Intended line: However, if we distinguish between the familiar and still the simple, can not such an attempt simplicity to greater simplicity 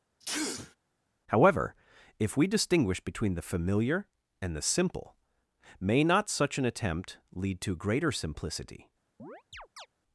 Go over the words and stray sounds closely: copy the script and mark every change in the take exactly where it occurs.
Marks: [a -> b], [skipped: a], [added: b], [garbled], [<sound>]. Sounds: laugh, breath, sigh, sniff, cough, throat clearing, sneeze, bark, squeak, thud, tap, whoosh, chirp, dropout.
[sneeze] However, if we distinguish between the familiar and [skipped: still] the simple, [can -> may] not such an attempt [simplicity -> lead] to greater simplicity [chirp]